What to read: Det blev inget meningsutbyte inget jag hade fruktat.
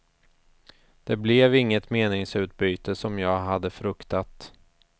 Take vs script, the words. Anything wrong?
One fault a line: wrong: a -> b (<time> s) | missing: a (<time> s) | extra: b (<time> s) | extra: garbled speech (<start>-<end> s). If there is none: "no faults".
wrong: inget -> som (3.0 s)